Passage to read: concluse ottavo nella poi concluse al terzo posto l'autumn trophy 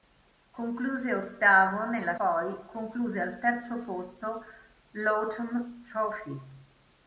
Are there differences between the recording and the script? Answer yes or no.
no